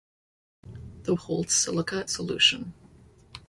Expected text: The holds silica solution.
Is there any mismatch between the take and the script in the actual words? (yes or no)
no